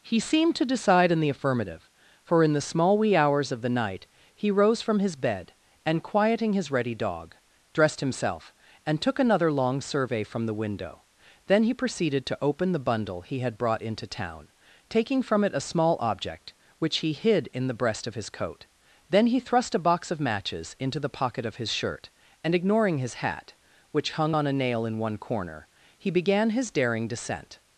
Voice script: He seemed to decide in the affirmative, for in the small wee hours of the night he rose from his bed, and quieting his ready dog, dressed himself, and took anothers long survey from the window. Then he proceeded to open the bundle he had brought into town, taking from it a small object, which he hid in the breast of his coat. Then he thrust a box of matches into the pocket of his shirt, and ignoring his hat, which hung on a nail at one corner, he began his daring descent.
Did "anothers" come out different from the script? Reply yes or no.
yes